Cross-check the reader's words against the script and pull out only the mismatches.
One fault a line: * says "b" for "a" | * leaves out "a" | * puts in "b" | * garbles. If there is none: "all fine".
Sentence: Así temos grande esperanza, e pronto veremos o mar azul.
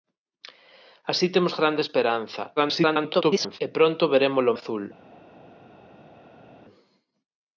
* garbles
* leaves out "mar"